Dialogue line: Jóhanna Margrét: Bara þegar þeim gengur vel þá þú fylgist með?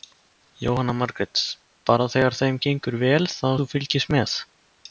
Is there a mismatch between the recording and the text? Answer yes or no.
no